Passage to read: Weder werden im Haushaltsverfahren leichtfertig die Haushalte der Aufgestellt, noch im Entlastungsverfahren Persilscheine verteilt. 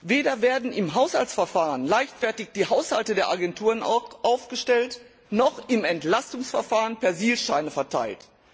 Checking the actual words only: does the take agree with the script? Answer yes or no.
no